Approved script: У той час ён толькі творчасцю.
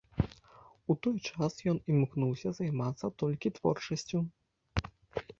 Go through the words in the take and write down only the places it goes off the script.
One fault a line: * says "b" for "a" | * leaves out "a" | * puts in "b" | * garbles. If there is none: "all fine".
* puts in "імкнуўся займацца"